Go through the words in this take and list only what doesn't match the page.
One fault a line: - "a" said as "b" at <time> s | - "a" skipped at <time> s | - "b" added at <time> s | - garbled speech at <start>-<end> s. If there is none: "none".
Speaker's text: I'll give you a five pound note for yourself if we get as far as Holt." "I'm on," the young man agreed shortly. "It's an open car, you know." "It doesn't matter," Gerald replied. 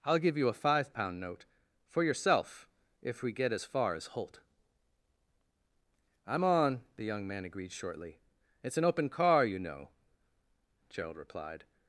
- "It doesn't matter" skipped at 9.9 s